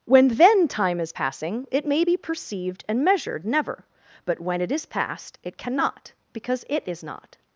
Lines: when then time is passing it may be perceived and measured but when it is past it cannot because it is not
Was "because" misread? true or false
false